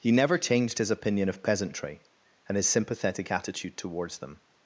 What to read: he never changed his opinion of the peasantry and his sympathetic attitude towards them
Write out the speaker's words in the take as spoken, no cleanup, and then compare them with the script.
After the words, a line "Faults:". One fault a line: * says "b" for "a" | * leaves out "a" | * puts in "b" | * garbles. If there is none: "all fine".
he never changed his opinion of peasantry and his sympathetic attitude towards them
Faults:
* leaves out "the"